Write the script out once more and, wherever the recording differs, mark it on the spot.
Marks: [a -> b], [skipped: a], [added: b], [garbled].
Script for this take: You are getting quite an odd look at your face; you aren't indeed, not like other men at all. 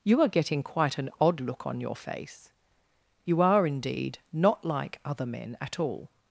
You are getting quite an odd look [at -> on] your face; you [aren't -> are] indeed, not like other men at all.